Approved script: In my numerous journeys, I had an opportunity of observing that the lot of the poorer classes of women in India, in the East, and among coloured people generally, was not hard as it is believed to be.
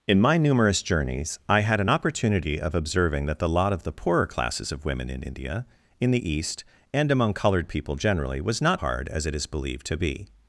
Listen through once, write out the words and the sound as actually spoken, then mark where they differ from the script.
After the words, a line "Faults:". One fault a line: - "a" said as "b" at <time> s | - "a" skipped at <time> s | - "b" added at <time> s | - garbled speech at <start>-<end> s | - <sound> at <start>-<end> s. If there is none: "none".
In my numerous journeys, I had an opportunity of observing that the lot of the poorer classes of women in India, in the East, and among coloured people generally, was not hard as it is believed to be.
Faults:
none